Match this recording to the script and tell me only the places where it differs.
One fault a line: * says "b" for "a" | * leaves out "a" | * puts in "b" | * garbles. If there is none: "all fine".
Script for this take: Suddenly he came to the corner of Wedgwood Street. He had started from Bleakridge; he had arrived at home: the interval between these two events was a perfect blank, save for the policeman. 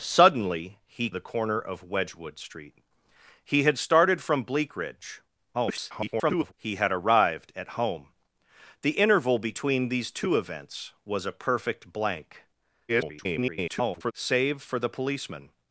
* leaves out "came to"
* garbles
* garbles